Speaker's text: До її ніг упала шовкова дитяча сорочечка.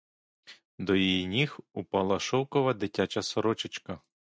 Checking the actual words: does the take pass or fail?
pass